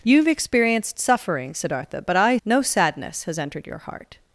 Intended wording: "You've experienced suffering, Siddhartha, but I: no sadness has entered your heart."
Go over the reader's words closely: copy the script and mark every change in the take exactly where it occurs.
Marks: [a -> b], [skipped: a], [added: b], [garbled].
"You've experienced suffering, Siddhartha, but I: no sadness has entered your heart."